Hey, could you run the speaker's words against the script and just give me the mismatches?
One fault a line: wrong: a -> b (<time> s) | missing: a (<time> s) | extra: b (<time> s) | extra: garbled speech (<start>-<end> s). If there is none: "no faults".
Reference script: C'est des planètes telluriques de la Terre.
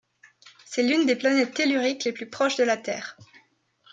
extra: l'une (0.8 s)
extra: les plus proches (2.0 s)